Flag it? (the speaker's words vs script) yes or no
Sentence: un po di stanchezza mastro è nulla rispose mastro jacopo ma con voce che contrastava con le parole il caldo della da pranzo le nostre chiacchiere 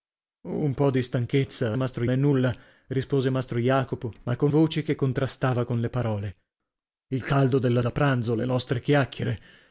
no